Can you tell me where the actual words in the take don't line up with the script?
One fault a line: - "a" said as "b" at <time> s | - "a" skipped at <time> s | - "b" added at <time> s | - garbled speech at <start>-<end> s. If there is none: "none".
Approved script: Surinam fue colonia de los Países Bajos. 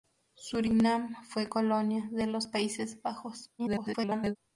- garbled speech at 3.6-4.4 s